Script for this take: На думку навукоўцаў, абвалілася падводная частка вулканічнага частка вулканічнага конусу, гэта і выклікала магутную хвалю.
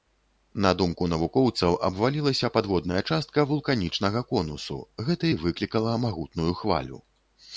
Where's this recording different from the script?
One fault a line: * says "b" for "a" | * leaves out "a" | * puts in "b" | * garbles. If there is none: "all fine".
* leaves out "частка вулканічнага"